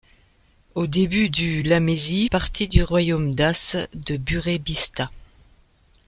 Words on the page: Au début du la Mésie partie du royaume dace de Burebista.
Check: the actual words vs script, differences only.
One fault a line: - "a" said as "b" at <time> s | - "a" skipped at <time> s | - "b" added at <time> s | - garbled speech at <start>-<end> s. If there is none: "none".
none